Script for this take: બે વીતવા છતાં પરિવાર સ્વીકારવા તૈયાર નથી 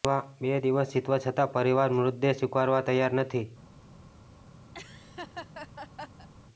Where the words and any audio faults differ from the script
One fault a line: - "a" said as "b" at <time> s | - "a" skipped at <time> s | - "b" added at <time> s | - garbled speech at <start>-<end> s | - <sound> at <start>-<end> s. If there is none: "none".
- "દિવસ" added at 0.6 s
- "મૃતદેહ" added at 2.0 s
- laugh at 4.7-6.3 s